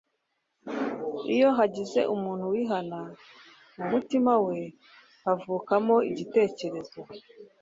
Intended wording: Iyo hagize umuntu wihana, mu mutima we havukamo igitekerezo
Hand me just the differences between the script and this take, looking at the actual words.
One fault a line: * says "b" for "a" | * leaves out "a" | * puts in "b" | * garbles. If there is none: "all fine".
all fine